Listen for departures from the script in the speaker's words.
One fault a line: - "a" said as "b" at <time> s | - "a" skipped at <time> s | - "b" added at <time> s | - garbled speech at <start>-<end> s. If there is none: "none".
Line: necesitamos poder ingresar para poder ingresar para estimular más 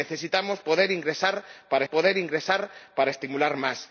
none